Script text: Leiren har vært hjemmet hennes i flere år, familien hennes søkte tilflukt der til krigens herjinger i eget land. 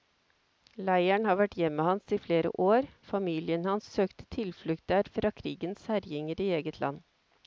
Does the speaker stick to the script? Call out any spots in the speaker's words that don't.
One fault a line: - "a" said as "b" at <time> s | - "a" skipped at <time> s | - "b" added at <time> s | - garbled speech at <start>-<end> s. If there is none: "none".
- "hennes" said as "hans" at 1.9 s
- "hennes" said as "hans" at 3.7 s
- "til" said as "fra" at 5.2 s